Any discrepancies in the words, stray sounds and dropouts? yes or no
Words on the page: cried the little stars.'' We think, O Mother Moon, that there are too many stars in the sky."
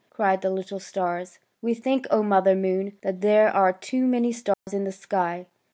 yes